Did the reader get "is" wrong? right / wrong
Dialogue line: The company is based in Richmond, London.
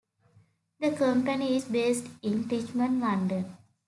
right